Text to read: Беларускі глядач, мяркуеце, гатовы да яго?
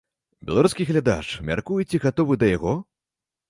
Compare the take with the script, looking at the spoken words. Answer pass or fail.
pass